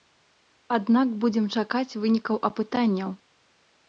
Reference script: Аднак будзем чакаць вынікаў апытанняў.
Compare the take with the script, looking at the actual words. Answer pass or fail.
pass